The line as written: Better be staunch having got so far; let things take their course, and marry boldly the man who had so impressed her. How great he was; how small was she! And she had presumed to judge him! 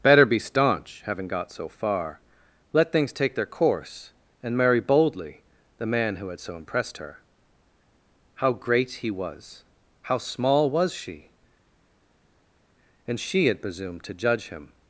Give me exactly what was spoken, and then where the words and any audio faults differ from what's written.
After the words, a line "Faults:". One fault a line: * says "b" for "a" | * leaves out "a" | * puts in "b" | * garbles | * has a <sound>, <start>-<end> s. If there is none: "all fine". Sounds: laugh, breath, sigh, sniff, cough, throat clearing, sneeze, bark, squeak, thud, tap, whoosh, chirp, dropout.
Better be staunch having got so far; let things take their course, and marry boldly the man who had so impressed her. How great he was; how small was she! And she had presumed to judge him!
Faults:
all fine